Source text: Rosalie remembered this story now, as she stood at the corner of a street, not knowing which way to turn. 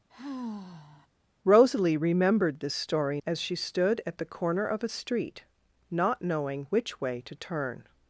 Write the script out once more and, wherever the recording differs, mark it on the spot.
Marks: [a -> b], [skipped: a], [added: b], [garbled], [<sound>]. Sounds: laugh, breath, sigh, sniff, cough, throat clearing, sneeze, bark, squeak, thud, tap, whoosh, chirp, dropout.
[sigh] Rosalie remembered this story [skipped: now,] as she stood at the corner of a street, not knowing which way to turn.